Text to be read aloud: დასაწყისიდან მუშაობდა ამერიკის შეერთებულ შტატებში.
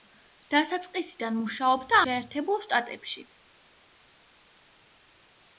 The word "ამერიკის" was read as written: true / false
false